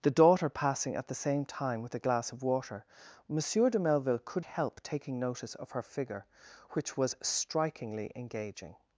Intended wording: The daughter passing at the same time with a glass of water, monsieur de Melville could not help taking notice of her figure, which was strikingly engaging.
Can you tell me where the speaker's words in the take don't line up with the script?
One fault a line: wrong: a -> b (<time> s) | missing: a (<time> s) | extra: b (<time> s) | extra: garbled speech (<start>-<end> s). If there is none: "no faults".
missing: not (4.4 s)